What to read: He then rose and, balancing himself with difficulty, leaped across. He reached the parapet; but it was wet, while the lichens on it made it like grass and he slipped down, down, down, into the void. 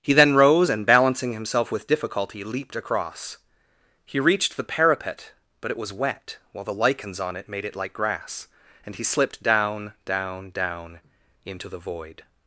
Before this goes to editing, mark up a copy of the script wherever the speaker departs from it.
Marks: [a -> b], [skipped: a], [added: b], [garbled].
He then rose and, balancing himself with difficulty, leaped across. He reached the parapet; but it was wet, while the lichens on it made it like grass and he slipped down, down, down, into the void.